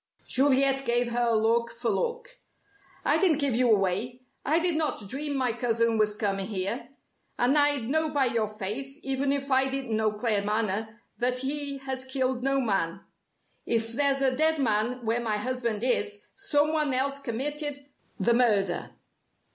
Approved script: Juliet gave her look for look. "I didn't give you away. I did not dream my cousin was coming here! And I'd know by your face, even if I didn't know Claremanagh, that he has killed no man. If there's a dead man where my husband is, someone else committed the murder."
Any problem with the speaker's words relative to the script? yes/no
no